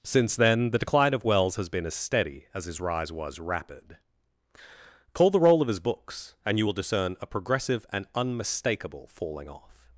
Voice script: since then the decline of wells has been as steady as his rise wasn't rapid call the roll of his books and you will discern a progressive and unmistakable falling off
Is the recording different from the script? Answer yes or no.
yes